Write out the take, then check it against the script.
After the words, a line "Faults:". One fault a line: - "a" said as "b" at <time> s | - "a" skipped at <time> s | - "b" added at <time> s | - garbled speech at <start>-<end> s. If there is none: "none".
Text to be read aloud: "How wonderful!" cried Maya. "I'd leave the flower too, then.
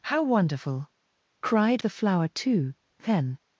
"How wonderful!" cried The flower too, then.
Faults:
- "Maya I'd leave" skipped at 1.8 s